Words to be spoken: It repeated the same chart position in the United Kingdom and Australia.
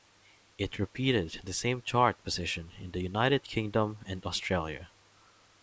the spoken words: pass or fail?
pass